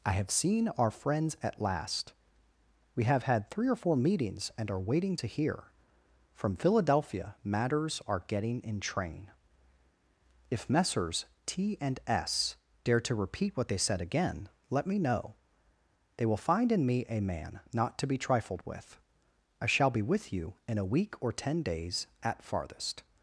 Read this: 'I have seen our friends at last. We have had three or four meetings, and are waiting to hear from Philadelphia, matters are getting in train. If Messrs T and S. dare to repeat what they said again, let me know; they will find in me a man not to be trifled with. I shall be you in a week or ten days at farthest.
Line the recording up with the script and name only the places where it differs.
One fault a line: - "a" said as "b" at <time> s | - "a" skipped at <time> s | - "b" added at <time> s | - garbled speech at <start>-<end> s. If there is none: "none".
- "with" added at 20.0 s